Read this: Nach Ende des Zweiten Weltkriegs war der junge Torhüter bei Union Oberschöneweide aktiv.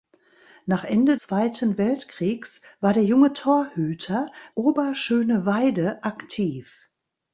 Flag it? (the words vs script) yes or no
yes